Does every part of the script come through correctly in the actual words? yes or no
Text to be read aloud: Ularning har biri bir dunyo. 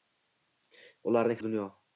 no